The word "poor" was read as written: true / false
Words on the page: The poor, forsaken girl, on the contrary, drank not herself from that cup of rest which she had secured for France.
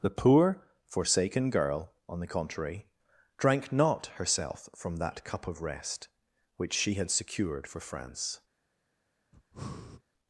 true